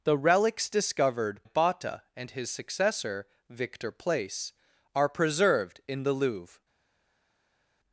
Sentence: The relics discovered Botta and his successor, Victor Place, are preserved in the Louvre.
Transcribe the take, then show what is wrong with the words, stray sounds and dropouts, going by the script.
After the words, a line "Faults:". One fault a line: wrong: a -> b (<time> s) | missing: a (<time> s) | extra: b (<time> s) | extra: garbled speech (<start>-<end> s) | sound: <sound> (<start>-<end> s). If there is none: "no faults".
The relics discovered Botta and his successor, Victor Place, are preserved in the Louvre.
Faults:
no faults